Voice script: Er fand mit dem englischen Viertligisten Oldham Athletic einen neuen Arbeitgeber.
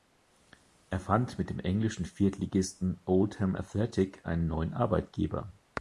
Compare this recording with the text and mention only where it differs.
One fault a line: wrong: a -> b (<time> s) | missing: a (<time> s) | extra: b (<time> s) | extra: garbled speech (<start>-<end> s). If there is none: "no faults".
no faults